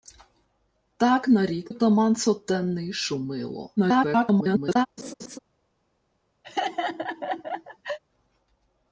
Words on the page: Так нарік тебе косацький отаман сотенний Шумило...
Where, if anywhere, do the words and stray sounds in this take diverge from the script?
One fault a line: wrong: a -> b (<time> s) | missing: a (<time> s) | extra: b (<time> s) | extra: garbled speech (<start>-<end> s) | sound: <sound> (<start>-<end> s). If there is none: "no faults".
missing: тебе косацький (1.7 s)
extra: garbled speech (3.8-4.9 s)
sound: laugh (5.0-5.4 s)
sound: laugh (6.4-8.0 s)